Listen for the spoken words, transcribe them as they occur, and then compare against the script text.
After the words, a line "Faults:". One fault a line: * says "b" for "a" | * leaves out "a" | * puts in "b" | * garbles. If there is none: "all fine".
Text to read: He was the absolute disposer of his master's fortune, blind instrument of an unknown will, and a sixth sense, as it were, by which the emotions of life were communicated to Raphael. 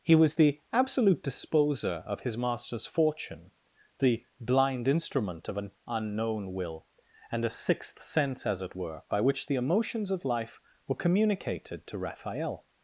He was the absolute disposer of his master's fortune, the blind instrument of an unknown will, and a sixth sense, as it were, by which the emotions of life were communicated to Raphael.
Faults:
* puts in "the"